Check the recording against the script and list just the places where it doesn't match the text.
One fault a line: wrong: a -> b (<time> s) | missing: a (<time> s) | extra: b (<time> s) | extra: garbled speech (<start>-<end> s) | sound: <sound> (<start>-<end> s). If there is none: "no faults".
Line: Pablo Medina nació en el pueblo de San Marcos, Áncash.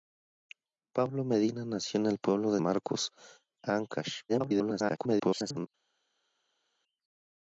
missing: San (2.6 s)
extra: garbled speech (4.3-5.7 s)